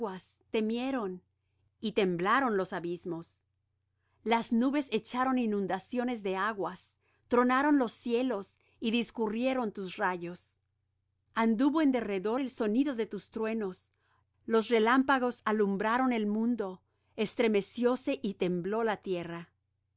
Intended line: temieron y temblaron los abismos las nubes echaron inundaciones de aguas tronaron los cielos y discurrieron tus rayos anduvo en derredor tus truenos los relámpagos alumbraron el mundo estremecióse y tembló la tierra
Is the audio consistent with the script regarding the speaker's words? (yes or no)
no